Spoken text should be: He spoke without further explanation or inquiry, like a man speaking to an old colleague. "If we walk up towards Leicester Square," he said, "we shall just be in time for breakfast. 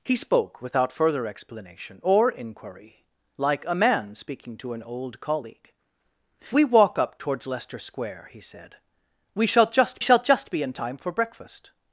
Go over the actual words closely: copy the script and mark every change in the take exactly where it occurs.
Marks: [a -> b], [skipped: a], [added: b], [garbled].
He spoke without further explanation or inquiry, like a man speaking to an old colleague. [skipped: "If] we walk up towards Leicester Square," he said, "we shall just [added: shall just] be in time for breakfast.